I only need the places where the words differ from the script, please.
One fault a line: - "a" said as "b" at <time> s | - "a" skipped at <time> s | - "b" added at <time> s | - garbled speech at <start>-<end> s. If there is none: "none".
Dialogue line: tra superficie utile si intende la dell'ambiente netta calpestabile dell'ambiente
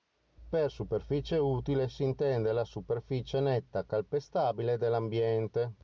- "tra" said as "per" at 0.5 s
- "dell'ambiente" said as "superficie" at 2.6 s